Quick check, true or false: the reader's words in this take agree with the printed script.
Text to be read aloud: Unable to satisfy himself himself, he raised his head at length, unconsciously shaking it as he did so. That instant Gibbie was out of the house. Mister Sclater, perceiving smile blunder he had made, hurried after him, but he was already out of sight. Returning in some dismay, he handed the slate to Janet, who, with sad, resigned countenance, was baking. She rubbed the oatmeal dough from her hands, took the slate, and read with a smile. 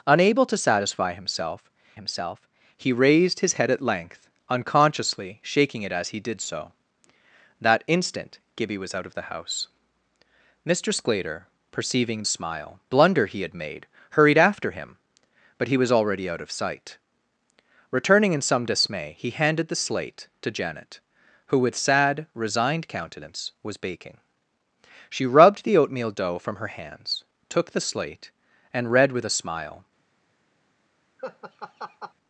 true